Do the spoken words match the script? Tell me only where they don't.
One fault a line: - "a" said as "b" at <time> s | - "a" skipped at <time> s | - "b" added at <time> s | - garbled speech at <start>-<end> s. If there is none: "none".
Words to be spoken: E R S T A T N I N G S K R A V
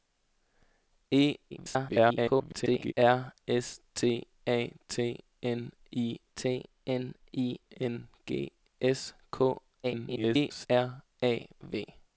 - garbled speech at 1.5-2.9 s
- "T N I" added at 6.3 s
- garbled speech at 9.8-10.7 s